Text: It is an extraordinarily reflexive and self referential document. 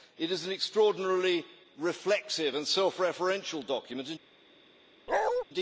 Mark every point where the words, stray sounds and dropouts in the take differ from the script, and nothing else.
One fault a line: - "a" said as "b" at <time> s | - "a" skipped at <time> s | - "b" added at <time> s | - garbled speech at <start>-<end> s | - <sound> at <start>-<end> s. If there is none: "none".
- bark at 5.1-5.4 s